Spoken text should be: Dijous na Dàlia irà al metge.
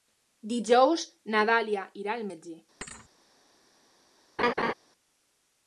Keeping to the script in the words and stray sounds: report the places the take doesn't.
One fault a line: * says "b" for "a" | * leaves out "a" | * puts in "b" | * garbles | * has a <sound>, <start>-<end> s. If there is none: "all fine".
* has a thud, 2.8-3.1 s
* has a laugh, 4.4-4.7 s